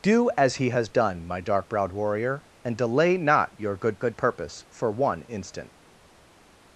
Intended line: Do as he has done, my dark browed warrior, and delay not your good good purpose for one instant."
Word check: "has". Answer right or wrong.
right